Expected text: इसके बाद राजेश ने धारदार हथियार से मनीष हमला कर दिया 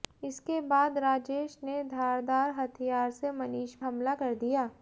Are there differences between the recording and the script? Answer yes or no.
no